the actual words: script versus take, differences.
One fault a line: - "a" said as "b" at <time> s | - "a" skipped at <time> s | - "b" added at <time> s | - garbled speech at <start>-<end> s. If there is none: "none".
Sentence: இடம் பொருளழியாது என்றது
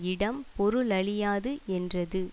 none